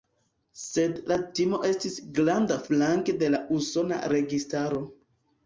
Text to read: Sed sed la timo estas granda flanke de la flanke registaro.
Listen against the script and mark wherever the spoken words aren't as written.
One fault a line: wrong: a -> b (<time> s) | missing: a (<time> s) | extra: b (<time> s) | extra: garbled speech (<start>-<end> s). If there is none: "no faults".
missing: sed (0.9 s)
wrong: estas -> estis (1.7 s)
wrong: flanke -> usona (3.6 s)